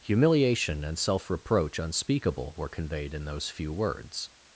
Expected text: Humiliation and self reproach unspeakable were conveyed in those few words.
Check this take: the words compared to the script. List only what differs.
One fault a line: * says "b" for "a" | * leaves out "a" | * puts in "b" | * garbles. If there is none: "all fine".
all fine